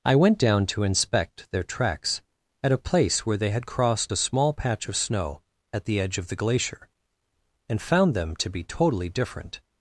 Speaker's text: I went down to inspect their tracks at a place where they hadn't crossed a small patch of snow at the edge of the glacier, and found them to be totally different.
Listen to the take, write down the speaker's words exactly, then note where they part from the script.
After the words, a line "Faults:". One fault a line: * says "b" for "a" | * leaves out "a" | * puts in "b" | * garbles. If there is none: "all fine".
I went down to inspect their tracks at a place where they had crossed a small patch of snow at the edge of the glacier, and found them to be totally different.
Faults:
* says "had" for "hadn't"